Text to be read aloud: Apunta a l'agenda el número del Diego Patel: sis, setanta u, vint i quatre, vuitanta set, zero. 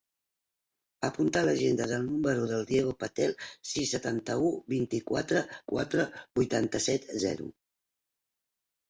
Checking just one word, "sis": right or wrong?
right